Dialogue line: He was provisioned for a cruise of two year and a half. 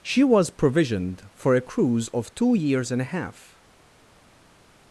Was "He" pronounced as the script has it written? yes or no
no